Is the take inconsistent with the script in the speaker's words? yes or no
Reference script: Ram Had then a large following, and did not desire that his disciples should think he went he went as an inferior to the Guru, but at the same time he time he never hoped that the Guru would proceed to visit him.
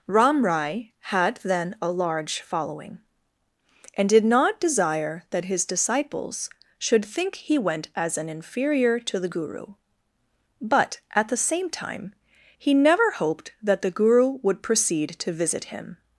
yes